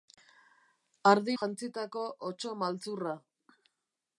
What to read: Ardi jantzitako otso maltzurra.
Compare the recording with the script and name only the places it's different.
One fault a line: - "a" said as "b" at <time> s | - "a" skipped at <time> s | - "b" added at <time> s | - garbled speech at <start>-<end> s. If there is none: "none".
none